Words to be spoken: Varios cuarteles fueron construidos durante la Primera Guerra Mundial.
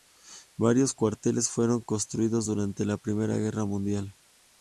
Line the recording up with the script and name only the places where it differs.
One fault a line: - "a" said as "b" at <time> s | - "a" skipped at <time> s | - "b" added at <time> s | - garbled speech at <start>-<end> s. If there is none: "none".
none